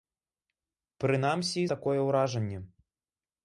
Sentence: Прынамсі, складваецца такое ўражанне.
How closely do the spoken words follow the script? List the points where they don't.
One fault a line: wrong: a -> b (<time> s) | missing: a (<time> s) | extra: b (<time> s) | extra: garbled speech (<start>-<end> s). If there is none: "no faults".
missing: складваецца (1.6 s)